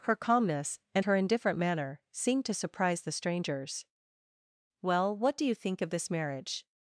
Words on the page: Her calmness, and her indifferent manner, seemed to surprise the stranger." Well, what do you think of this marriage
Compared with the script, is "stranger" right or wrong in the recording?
wrong